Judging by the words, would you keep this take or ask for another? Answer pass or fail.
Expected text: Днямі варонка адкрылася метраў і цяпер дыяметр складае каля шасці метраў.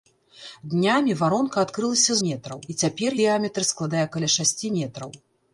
pass